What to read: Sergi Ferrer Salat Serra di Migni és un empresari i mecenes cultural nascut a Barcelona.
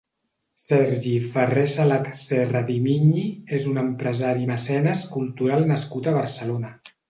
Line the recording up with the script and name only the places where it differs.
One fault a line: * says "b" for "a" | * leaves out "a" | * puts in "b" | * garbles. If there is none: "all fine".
all fine